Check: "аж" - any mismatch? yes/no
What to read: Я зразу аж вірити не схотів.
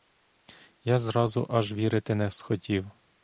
no